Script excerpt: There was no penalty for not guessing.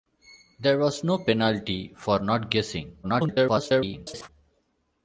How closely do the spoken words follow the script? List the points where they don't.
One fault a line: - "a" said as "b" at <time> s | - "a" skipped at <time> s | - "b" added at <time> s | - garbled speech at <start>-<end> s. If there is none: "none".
- garbled speech at 3.0-4.3 s